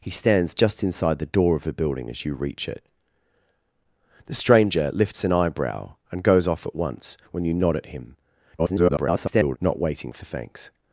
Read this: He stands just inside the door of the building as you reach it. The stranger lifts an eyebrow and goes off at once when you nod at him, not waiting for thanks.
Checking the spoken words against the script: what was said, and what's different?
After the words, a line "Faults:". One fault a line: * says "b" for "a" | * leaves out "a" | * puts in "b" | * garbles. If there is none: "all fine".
He stands just inside the door of the building as you reach it. The stranger lifts an eyebrow and goes off at once when you nod at him, [garbled] not waiting for thanks.
Faults:
* garbles